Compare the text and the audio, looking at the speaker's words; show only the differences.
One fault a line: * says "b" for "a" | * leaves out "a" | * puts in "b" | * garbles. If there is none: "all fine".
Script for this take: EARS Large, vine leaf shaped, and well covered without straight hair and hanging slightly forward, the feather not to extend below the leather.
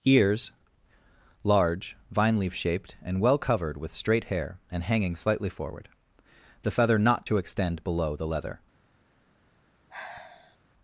* says "with" for "without"